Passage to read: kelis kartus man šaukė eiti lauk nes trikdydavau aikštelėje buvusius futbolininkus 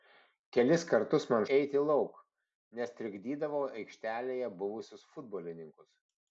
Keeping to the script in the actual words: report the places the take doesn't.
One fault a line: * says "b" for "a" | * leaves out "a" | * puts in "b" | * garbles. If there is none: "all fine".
* leaves out "šaukė"